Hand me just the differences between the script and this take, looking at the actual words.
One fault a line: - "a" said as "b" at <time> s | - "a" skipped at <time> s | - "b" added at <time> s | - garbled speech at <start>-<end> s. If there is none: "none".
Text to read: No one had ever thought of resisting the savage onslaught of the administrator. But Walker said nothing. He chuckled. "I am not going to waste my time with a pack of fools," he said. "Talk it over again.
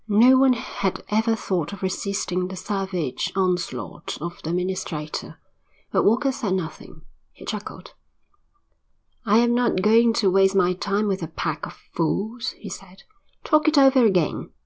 none